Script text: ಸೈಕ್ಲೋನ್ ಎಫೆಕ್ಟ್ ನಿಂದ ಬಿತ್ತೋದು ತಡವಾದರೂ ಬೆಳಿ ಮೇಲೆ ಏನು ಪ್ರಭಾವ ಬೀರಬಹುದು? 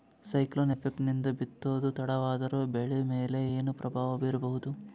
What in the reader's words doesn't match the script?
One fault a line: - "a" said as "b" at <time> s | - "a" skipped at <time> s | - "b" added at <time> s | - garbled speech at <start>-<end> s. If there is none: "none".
none